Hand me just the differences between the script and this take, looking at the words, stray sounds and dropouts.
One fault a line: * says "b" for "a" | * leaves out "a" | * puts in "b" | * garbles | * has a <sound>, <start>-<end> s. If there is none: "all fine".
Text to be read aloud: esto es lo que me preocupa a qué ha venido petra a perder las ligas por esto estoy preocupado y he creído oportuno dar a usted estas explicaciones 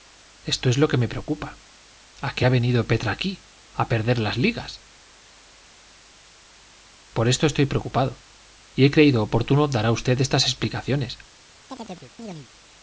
* puts in "aquí"
* has a chirp, 11.7-12.5 s